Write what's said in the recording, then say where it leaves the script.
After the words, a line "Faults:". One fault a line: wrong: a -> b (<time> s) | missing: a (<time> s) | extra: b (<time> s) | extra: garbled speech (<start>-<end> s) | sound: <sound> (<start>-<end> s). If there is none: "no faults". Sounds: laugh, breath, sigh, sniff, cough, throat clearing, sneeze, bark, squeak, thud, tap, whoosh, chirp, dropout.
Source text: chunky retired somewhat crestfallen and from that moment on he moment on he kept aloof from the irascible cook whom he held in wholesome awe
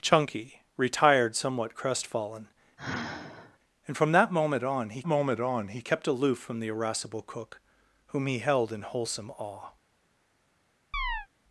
chunky retired somewhat crestfallen and from that moment on he moment on he kept aloof from the irascible cook whom he held in wholesome awe
Faults:
sound: sigh (2.8-3.6 s)
sound: chirp (10.9-11.3 s)